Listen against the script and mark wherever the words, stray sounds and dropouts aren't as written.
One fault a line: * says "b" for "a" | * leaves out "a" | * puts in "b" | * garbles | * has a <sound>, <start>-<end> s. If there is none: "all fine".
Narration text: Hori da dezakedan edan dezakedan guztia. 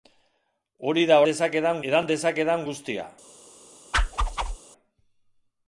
* has a whoosh, 3.9-4.6 s